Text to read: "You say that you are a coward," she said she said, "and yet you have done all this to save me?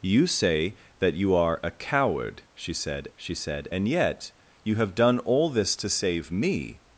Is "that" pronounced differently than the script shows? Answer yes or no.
no